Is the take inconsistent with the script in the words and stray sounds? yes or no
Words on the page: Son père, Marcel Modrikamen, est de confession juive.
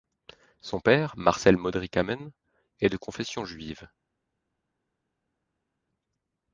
no